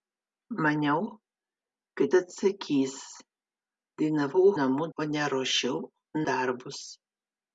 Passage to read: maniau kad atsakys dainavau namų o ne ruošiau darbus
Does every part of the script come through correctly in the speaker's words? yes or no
yes